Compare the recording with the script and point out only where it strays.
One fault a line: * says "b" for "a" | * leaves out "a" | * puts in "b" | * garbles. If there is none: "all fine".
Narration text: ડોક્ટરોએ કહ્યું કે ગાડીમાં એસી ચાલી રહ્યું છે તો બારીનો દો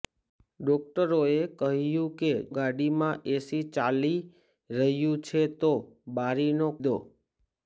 all fine